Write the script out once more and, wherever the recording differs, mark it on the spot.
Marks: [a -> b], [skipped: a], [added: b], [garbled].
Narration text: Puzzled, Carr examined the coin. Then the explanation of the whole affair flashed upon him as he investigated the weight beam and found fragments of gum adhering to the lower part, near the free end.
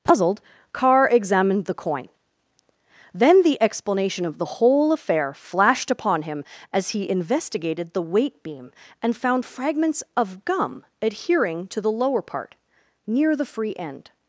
Puzzled, Carr examined the coin. Then the explanation of the whole affair flashed upon him as he investigated the weight beam and found fragments of gum adhering to the lower part, near the free end.